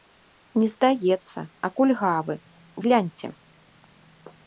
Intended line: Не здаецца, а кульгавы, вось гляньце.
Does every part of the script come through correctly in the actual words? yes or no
no